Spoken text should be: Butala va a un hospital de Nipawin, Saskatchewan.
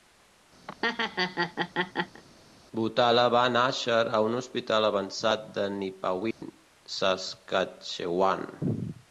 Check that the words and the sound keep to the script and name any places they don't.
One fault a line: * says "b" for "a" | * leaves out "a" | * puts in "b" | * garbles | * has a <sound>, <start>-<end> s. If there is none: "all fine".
* has a laugh, 0.7-2.2 s
* puts in "nàixer"
* puts in "avançat"
* has a dropout, 6.3-6.4 s